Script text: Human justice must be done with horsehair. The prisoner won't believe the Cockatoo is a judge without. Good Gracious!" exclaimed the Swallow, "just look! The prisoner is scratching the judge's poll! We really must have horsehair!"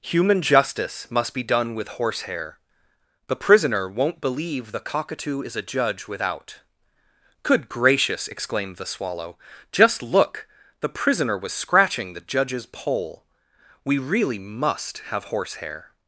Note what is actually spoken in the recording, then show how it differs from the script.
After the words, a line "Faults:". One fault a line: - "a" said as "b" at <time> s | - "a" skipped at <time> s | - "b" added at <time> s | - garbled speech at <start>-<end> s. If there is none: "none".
Human justice must be done with horsehair. The prisoner won't believe the Cockatoo is a judge without. Good Gracious!" exclaimed the Swallow, "just look! The prisoner was scratching the judge's poll! We really must have horsehair!"
Faults:
- "is" said as "was" at 11.4 s